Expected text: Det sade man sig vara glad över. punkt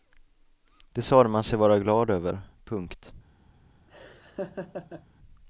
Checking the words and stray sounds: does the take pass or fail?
fail